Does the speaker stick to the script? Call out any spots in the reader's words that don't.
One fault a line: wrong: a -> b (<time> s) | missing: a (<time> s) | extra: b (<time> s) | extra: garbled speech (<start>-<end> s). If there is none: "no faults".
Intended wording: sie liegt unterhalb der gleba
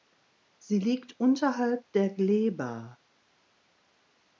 no faults